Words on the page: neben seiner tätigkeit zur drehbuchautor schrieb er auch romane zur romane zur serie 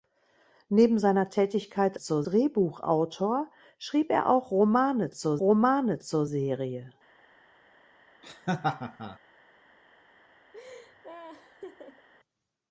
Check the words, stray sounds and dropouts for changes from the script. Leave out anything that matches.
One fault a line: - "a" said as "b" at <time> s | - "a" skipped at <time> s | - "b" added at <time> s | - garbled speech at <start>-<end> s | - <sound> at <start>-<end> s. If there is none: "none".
- laugh at 8.2-9.2 s
- laugh at 10.5-12.1 s